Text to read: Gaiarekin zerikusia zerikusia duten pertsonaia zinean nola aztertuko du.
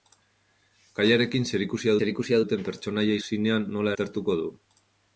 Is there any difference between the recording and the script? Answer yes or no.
no